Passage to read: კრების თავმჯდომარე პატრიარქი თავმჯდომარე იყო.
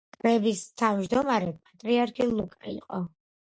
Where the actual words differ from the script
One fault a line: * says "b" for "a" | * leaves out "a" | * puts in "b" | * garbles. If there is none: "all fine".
* says "ლუკა" for "თავმჯდომარე"